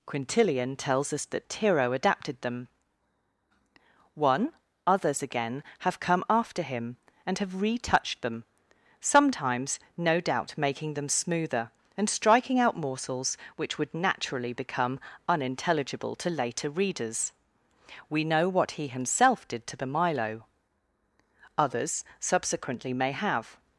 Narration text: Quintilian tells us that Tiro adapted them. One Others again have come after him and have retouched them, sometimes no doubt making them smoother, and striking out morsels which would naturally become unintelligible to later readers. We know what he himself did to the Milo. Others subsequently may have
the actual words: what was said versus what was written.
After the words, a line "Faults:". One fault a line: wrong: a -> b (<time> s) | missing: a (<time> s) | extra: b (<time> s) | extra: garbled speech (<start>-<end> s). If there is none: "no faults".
Quintilian tells us that Tiro adapted them. One Others again have come after him and have retouched them, sometimes no doubt making them smoother, and striking out morsels which would naturally become unintelligible to later readers. We know what he himself did to the Milo. Others subsequently may have
Faults:
no faults